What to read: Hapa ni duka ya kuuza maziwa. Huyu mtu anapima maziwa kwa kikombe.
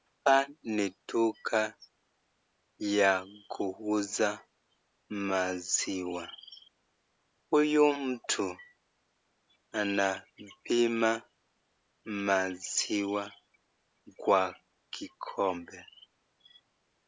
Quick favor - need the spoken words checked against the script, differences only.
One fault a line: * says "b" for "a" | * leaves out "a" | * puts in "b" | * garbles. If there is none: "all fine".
all fine